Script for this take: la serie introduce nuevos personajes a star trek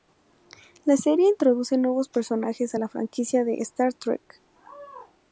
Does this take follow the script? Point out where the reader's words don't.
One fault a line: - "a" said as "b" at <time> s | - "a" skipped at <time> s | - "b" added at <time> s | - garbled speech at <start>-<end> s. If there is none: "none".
- "la franquicia de" added at 2.8 s